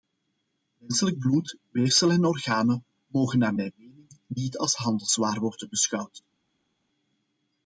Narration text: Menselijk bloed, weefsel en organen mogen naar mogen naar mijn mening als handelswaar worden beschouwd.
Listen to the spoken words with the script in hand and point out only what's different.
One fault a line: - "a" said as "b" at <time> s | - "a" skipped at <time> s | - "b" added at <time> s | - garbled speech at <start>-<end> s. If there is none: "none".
- "mogen naar" skipped at 3.5 s
- "niet" added at 4.3 s